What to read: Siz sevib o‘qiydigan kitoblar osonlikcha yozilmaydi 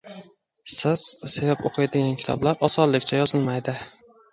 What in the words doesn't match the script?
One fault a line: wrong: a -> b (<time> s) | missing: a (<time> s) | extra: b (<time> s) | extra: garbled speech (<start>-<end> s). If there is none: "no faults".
no faults